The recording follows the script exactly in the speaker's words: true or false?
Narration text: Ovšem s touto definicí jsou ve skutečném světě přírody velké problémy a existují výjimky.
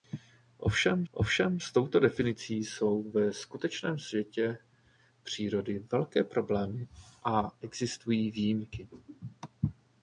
false